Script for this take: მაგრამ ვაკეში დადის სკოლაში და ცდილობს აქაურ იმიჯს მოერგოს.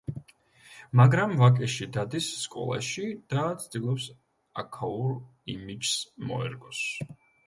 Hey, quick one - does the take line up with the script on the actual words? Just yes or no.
yes